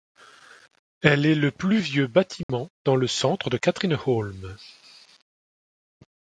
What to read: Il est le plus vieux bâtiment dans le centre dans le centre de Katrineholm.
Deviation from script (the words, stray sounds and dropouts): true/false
true